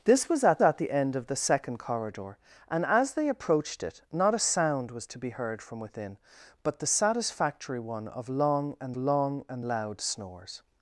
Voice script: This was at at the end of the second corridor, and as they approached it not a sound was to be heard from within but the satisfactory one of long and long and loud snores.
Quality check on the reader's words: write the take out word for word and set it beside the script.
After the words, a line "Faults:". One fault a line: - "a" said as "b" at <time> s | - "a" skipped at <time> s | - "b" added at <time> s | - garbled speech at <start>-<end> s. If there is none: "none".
This was at at the end of the second corridor, and as they approached it not a sound was to be heard from within but the satisfactory one of long and long and loud snores.
Faults:
none